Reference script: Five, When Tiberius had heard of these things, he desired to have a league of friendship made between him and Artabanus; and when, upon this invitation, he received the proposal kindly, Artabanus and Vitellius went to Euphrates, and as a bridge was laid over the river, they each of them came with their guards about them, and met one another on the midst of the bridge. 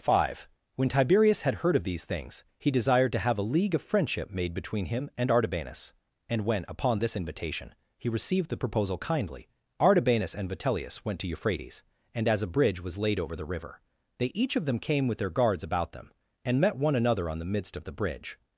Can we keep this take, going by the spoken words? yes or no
yes